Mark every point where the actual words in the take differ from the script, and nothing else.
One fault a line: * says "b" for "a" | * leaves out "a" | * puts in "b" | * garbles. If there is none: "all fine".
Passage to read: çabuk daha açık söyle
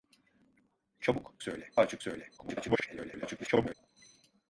* says "söyle" for "daha"
* garbles